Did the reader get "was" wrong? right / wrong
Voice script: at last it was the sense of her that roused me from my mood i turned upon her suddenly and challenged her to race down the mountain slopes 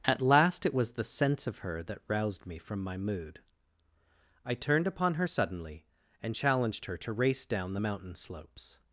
right